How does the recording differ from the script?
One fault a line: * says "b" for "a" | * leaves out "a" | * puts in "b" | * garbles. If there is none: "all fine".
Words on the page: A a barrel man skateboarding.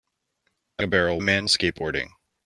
all fine